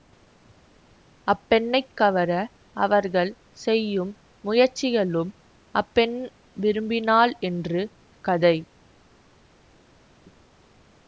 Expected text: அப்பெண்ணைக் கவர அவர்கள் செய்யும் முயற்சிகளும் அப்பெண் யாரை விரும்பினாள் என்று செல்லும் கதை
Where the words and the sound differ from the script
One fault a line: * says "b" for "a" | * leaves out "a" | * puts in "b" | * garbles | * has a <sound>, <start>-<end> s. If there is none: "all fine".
* leaves out "யாரை"
* leaves out "செல்லும்"